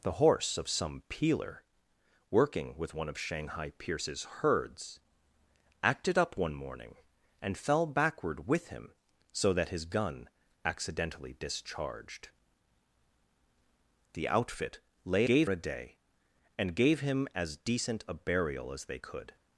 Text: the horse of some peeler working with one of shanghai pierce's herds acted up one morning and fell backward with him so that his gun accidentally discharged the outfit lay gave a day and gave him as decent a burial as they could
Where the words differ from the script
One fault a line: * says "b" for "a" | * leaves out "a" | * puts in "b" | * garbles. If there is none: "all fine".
all fine